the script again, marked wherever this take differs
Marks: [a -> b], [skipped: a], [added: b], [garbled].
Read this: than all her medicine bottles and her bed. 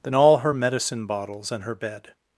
than all her medicine bottles and her bed.